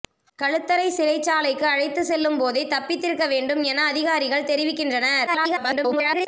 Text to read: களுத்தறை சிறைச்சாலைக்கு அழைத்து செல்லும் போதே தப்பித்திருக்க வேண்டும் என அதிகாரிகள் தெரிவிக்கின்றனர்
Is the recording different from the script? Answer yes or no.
yes